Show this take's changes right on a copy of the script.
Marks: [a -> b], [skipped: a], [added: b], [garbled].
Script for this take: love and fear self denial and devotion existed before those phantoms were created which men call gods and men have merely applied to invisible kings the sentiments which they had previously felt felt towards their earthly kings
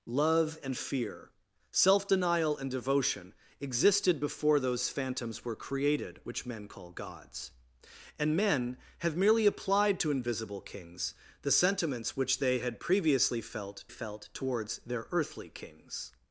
love and fear self denial and devotion existed before those phantoms were created which men call gods and men have merely applied to invisible kings the sentiments which they had previously felt felt towards their earthly kings